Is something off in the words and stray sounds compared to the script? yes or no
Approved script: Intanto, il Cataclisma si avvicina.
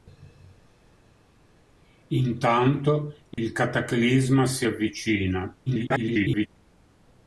yes